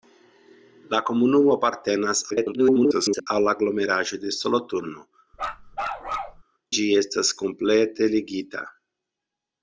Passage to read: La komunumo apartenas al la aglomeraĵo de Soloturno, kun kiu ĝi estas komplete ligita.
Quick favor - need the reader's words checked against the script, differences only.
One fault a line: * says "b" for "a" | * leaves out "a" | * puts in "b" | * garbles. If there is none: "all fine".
* garbles
* leaves out "kun kiu"